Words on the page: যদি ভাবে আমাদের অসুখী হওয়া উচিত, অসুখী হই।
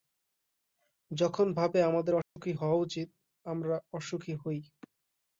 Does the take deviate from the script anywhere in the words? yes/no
yes